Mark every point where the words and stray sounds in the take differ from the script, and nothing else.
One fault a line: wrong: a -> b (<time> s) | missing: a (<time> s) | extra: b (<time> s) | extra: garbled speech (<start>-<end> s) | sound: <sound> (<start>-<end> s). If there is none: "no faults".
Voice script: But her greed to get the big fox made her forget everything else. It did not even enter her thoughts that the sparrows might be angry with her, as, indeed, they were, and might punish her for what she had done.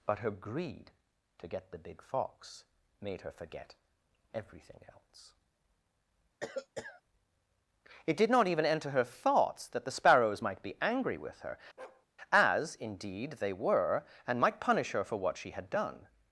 sound: cough (6.4-7.0 s)
sound: bark (11.8-12.1 s)